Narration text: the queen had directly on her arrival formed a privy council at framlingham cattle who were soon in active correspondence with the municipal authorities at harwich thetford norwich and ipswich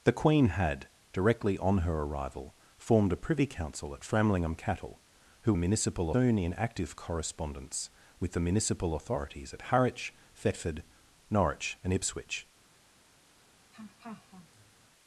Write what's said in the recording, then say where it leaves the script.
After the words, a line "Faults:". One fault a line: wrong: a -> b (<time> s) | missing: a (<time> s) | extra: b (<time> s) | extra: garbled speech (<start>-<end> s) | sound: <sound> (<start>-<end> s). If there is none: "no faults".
the queen had directly on her arrival formed a privy council at framlingham cattle who municipal soon in active correspondence with the municipal authorities at harwich thetford norwich and ipswich
Faults:
wrong: were -> municipal (5.6 s)
sound: laugh (13.7-14.9 s)